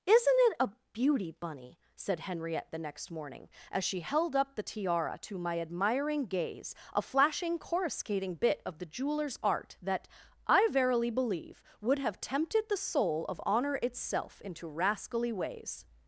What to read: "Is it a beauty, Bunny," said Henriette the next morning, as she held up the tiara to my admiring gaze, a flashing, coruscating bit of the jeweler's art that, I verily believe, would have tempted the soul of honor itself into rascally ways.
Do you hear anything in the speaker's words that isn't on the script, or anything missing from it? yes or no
yes